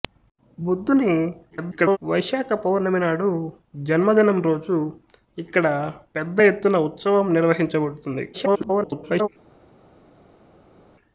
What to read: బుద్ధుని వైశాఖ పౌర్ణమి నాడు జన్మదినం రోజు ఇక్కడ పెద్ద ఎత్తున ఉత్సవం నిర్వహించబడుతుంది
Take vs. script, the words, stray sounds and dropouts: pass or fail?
fail